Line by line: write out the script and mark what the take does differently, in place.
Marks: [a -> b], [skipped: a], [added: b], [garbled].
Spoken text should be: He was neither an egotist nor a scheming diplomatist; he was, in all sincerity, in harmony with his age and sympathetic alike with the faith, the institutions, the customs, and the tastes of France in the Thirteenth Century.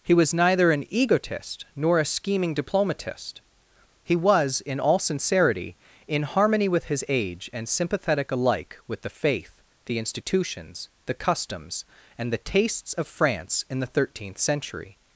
He was neither an egotist nor a scheming diplomatist; he was, in all sincerity, in harmony with his age and sympathetic alike with the faith, the institutions, the customs, and the tastes of France in the Thirteenth Century.